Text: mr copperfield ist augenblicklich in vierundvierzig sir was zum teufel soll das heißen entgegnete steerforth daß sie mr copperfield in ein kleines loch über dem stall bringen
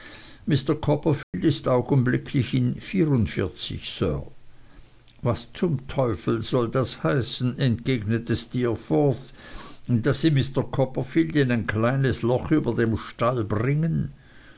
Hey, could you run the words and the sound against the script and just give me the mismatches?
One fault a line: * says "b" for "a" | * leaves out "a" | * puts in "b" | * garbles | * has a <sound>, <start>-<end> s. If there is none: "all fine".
* has a dropout, 1.2-1.3 s